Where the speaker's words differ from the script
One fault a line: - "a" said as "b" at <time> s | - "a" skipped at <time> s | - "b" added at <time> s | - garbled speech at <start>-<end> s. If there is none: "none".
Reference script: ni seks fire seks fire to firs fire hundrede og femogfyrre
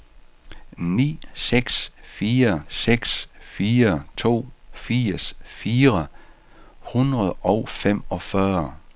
none